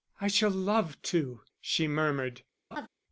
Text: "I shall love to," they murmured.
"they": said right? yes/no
no